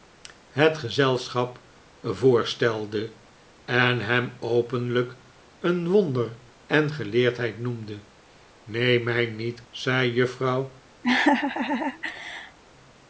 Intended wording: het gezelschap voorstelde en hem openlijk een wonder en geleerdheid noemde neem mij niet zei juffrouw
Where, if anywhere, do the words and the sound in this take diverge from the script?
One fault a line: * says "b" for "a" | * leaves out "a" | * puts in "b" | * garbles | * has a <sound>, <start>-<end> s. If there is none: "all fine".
* has a laugh, 11.0-12.6 s